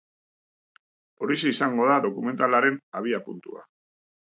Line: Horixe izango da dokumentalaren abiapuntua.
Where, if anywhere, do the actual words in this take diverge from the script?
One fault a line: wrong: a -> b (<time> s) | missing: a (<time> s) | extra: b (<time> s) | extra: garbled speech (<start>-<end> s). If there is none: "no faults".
no faults